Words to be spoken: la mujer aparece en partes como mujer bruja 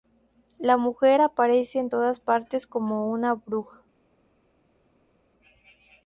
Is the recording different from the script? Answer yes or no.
yes